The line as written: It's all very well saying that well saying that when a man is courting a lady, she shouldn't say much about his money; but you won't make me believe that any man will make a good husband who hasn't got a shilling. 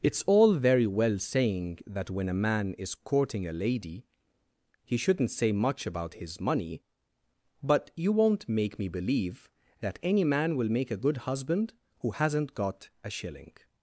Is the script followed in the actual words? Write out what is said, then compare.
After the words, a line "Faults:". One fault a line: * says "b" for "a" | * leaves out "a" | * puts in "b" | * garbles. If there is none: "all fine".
It's all very well saying that when a man is courting a lady, he shouldn't say much about his money; but you won't make me believe that any man will make a good husband who hasn't got a shilling.
Faults:
* leaves out "well saying that"
* says "he" for "she"